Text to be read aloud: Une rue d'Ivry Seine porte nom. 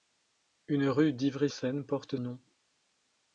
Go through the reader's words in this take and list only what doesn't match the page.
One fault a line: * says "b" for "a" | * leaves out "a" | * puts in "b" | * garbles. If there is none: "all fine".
all fine